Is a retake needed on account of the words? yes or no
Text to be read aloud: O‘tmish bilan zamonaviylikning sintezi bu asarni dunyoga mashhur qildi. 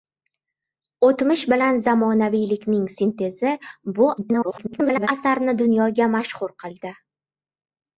yes